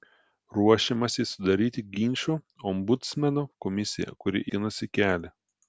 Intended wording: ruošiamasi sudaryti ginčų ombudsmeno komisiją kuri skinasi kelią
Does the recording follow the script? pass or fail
pass